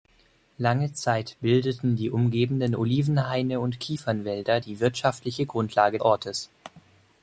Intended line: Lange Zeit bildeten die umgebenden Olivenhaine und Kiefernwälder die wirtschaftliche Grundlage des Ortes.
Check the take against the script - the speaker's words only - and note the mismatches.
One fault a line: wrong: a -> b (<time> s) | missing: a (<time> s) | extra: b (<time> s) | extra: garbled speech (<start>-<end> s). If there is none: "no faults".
missing: des (6.0 s)